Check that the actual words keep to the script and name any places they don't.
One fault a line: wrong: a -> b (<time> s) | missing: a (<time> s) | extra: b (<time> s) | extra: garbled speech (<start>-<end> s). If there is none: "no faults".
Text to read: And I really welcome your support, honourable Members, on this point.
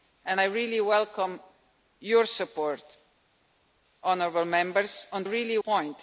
wrong: this -> really (5.2 s)